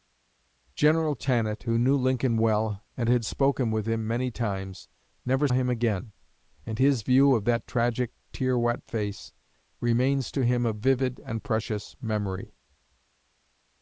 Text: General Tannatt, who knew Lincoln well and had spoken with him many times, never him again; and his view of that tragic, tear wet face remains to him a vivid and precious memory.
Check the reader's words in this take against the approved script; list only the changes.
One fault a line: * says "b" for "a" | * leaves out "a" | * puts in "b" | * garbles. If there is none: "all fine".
all fine